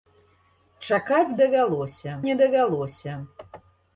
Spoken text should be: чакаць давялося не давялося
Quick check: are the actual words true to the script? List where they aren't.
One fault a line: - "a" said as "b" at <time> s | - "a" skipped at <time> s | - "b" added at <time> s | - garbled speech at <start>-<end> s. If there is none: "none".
none